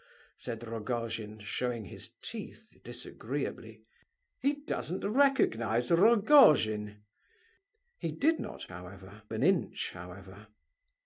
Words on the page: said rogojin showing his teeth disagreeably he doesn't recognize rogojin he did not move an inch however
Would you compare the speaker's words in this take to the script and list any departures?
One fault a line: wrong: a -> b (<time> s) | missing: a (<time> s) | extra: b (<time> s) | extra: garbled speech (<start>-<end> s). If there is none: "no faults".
wrong: move -> however (8.7 s)